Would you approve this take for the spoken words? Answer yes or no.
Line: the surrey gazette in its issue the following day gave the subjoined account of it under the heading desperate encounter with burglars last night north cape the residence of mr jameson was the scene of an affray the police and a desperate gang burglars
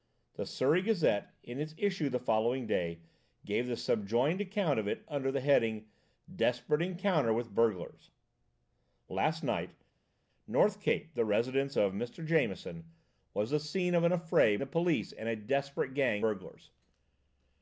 yes